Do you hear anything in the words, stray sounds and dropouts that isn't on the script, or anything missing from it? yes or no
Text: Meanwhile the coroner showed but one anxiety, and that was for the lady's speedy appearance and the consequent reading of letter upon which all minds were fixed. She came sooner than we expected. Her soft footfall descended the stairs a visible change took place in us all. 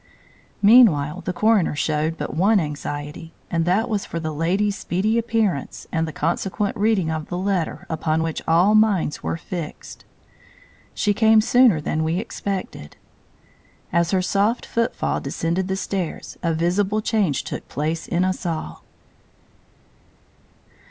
yes